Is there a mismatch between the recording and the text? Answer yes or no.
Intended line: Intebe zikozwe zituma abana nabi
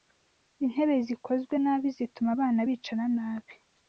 yes